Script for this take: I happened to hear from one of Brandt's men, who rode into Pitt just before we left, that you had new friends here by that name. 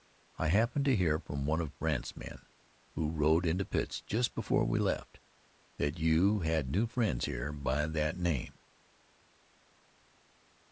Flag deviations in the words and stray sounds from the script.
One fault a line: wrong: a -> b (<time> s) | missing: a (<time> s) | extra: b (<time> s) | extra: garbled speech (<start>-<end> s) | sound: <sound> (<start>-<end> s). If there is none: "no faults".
no faults